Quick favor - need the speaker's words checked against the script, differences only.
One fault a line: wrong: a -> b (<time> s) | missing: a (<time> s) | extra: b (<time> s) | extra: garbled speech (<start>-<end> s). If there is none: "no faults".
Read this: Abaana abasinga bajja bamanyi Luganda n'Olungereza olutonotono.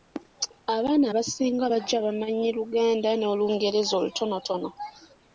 no faults